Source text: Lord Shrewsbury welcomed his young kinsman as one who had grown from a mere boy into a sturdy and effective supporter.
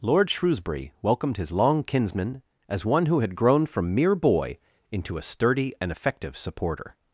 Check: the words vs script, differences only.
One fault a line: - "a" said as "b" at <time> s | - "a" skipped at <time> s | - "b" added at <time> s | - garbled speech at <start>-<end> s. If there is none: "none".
- "young" said as "long" at 1.5 s
- "a" skipped at 3.9 s